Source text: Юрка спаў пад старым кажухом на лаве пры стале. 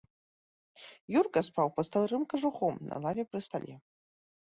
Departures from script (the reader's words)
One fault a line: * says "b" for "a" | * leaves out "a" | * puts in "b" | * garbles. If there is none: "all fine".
all fine